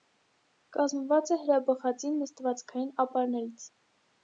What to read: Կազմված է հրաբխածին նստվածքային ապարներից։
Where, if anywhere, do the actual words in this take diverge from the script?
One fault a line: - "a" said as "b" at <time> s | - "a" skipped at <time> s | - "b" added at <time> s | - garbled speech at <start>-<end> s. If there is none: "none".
none